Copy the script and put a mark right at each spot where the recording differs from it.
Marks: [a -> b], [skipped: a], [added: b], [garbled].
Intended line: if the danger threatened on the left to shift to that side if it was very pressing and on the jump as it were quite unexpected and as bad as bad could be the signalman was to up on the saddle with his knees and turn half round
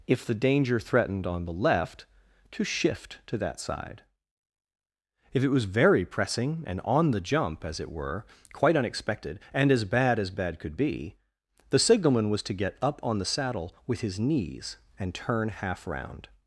if the danger threatened on the left to shift to that side if it was very pressing and on the jump as it were quite unexpected and as bad as bad could be the signalman was to [added: get] up on the saddle with his knees and turn half round